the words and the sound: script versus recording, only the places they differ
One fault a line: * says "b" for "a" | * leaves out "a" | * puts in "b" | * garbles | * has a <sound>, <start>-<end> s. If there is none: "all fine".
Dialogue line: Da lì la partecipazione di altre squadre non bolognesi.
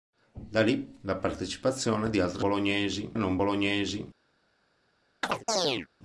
* says "bolognesi" for "squadre"
* has a chirp, 5.2-5.9 s